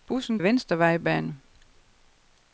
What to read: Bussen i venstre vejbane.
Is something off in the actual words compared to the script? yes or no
no